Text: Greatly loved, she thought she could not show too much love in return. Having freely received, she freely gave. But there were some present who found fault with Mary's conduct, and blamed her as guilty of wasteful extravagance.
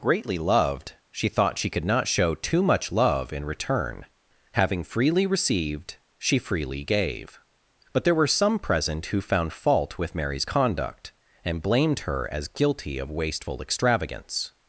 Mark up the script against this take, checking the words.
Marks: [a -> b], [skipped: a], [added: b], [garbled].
Greatly loved, she thought she could not show too much love in return. Having freely received, she freely gave. But there were some present who found fault with Mary's conduct, and blamed her as guilty of wasteful extravagance.